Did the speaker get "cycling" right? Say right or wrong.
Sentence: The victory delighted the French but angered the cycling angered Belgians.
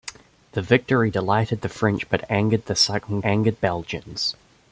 right